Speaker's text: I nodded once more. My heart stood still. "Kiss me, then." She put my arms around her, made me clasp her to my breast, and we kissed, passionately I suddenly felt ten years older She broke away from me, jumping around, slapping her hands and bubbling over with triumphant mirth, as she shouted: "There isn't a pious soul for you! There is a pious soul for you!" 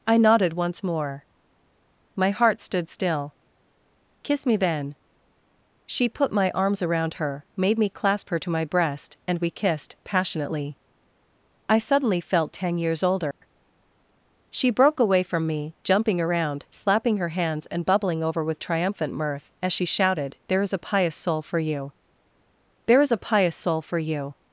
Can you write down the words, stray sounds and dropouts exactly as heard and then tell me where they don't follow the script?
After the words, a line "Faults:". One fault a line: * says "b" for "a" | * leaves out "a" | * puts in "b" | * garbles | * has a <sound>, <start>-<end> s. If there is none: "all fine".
I nodded once more. My heart stood still. "Kiss me, then." She put my arms around her, made me clasp her to my breast, and we kissed, passionately I suddenly felt ten years older She broke away from me, jumping around, slapping her hands and bubbling over with triumphant mirth, as she shouted: "There is a pious soul for you! There is a pious soul for you!"
Faults:
* has a dropout, 13.3-13.4 s
* says "is" for "isn't"